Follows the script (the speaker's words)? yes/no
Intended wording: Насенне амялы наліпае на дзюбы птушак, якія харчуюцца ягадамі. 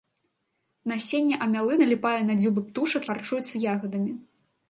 no